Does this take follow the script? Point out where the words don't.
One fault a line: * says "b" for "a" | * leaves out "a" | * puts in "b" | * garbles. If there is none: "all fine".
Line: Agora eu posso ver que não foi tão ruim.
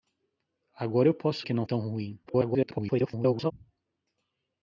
* leaves out "ver"
* leaves out "foi"
* garbles